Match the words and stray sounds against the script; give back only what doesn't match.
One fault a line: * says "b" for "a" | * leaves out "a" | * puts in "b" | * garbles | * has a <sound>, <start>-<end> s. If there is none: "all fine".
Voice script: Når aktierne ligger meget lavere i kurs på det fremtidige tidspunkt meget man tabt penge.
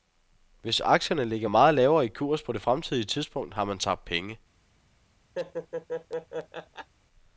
* says "Hvis" for "Når"
* says "har" for "meget"
* has a laugh, 5.4-6.9 s